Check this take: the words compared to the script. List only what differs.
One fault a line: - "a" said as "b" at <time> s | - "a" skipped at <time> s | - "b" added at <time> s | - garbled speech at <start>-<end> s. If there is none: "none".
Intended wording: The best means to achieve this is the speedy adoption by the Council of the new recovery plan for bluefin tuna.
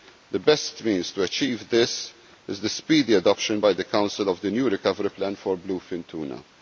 none